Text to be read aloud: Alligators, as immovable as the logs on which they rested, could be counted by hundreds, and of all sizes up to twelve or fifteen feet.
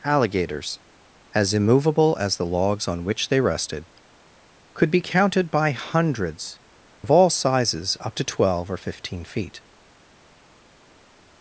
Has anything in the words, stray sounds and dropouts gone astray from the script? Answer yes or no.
yes